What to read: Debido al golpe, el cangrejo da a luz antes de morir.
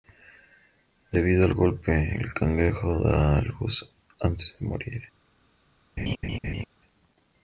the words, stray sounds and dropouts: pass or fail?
fail